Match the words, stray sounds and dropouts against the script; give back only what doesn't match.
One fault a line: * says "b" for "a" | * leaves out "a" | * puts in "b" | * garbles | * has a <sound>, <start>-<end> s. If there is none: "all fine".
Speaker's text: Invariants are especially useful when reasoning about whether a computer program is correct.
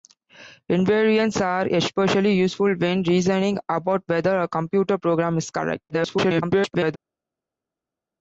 * garbles